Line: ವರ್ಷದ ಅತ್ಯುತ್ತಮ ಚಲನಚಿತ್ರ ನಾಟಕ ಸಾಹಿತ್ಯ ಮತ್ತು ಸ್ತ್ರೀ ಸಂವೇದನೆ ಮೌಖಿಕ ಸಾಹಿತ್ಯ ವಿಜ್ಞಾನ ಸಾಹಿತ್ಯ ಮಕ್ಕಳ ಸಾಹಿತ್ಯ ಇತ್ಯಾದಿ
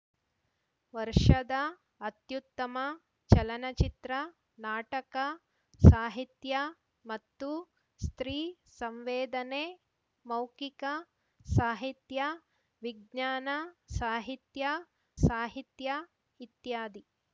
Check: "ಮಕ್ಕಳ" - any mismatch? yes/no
yes